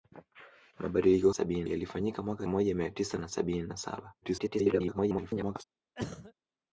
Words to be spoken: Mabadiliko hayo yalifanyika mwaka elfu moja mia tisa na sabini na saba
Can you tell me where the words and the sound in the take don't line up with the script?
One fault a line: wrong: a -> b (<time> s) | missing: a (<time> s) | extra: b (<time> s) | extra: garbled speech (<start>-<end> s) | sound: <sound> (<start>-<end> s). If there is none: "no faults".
wrong: hayo -> sabini (1.3 s)
missing: elfu (2.4 s)
extra: garbled speech (4.2-5.6 s)
sound: cough (6.0-6.3 s)